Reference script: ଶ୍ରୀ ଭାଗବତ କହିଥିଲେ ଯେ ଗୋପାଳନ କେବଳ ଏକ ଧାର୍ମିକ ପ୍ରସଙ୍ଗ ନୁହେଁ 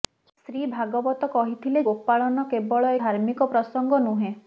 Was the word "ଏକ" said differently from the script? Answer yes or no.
yes